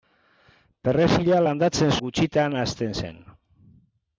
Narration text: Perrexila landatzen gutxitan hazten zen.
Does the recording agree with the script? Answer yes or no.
yes